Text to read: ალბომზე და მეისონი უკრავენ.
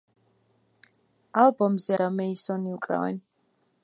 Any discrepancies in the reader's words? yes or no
no